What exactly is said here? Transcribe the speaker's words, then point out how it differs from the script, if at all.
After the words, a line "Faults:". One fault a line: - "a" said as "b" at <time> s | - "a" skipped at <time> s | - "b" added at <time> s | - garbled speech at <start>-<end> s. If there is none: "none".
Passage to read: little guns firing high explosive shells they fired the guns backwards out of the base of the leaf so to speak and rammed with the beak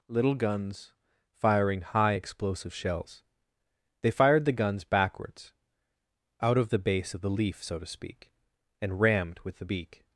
little guns firing high explosive shells they fired the guns backwards out of the base of the leaf so to speak and rammed with the beak
Faults:
none